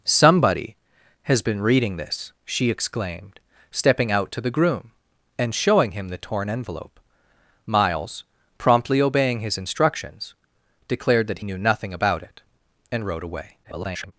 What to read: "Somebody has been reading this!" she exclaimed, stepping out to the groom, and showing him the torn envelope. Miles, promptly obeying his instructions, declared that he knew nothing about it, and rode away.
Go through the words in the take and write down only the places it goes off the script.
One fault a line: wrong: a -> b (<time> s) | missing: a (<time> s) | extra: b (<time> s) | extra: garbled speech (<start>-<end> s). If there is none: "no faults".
missing: he (11.4 s)
extra: garbled speech (13.6-14.1 s)